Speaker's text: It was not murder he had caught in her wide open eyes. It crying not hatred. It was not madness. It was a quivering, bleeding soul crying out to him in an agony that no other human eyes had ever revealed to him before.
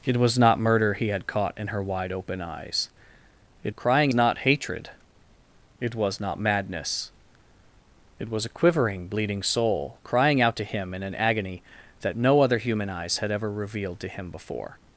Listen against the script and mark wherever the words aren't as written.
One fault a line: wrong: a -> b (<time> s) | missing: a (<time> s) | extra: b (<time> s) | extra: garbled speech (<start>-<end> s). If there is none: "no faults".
no faults